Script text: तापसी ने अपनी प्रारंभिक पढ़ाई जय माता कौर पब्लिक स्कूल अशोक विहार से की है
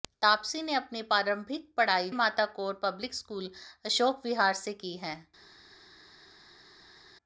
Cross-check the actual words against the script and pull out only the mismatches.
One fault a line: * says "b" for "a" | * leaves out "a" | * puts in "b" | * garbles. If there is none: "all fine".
* leaves out "जय"